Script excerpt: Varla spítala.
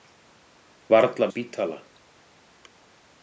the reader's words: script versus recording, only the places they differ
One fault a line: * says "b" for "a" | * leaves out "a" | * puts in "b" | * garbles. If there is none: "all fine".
all fine